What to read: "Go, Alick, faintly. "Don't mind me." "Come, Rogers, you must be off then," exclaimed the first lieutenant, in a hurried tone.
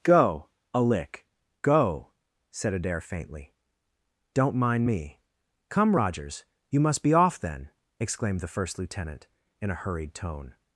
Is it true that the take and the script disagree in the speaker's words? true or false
true